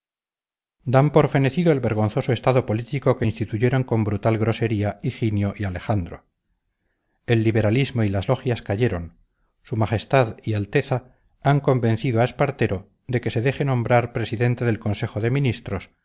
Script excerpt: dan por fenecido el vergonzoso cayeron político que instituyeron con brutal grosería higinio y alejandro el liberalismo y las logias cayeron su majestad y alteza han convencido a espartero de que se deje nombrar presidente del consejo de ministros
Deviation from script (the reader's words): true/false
true